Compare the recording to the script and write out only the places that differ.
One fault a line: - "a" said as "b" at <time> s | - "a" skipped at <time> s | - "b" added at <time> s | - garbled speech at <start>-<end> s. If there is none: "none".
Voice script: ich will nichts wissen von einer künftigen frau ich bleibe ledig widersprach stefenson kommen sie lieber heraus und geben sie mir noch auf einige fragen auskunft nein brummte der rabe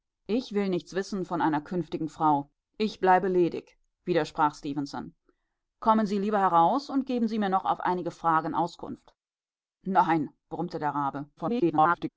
- garbled speech at 11.4-12.1 s